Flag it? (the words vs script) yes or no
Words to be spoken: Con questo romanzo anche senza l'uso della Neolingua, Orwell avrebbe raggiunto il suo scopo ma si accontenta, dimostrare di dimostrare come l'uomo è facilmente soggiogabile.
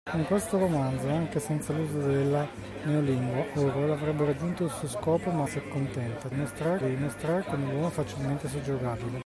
no